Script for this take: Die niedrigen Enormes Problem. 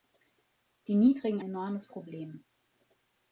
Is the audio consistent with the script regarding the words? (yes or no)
yes